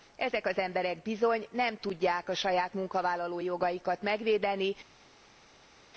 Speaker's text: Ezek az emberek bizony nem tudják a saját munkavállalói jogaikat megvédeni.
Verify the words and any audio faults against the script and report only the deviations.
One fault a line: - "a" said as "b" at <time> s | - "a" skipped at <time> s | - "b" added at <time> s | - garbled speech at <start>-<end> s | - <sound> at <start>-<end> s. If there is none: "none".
none